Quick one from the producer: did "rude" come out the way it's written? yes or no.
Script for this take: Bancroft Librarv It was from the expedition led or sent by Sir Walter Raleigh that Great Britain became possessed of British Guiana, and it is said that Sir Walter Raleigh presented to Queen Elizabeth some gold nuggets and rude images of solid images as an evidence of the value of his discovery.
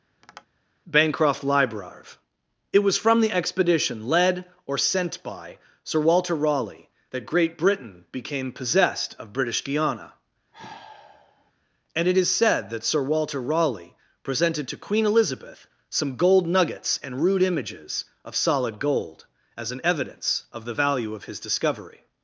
yes